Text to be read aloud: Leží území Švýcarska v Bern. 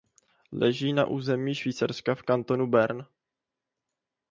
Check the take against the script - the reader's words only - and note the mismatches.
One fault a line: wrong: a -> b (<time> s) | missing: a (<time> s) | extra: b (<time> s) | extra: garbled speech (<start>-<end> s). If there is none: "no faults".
extra: na (0.9 s)
extra: kantonu (2.2 s)